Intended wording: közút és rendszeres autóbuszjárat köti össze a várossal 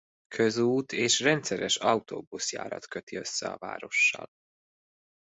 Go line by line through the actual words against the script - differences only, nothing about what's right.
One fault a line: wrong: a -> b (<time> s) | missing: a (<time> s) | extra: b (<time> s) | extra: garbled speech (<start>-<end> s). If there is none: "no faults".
no faults